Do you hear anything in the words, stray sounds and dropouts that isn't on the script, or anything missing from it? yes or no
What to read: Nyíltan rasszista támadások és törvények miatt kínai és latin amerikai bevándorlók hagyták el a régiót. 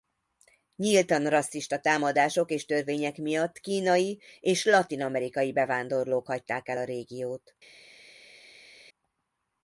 no